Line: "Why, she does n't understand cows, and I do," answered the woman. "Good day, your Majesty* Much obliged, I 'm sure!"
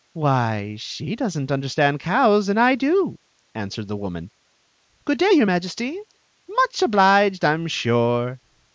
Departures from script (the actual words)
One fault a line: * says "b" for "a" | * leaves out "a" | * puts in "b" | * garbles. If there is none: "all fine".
all fine